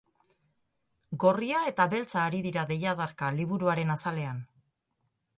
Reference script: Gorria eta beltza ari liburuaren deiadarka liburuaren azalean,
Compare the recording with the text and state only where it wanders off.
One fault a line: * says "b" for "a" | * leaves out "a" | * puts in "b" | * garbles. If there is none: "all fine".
* says "dira" for "liburuaren"